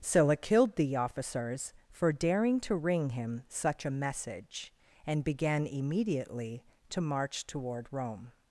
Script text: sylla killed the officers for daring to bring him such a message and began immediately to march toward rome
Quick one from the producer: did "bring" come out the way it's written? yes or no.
no